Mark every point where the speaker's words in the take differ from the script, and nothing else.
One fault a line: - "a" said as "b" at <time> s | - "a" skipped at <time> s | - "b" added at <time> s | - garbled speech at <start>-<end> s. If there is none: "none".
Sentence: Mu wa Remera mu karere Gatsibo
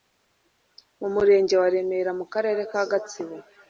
- "murenge" added at 1.1 s
- "ka" added at 2.7 s